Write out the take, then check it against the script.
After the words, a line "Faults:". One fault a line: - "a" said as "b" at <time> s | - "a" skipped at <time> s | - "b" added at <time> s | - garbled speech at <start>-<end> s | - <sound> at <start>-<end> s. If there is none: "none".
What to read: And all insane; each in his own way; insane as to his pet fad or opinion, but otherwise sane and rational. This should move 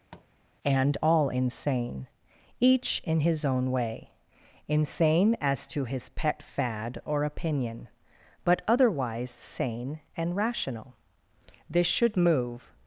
And all insane; each in his own way; insane as to his pet fad or opinion, but otherwise sane and rational. This should move
Faults:
- tap at 0.1-0.3 s